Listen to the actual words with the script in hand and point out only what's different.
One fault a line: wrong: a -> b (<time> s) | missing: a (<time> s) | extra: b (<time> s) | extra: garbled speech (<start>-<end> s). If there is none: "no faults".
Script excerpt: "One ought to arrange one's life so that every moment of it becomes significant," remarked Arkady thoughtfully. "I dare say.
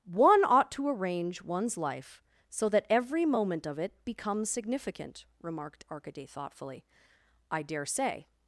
no faults